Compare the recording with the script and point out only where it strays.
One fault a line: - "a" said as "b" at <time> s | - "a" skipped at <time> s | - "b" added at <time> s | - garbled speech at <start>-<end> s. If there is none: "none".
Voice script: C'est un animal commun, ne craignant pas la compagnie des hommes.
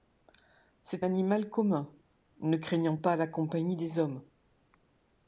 - "un" skipped at 1.1 s